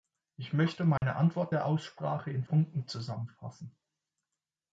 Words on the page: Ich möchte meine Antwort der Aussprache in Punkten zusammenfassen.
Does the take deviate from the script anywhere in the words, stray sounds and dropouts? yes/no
yes